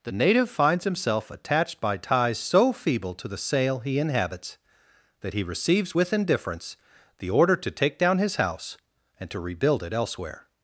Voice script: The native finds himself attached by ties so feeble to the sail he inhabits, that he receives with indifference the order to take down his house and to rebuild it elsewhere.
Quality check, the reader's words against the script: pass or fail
pass